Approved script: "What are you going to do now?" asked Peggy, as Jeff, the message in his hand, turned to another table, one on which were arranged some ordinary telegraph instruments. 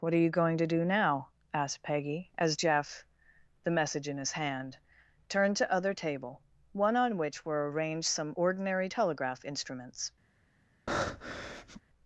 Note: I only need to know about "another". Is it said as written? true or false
false